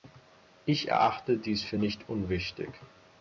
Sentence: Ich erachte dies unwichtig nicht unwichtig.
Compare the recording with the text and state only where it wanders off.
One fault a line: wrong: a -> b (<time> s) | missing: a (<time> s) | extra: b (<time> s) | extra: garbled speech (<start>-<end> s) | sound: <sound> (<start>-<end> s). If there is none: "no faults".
wrong: unwichtig -> für (1.6 s)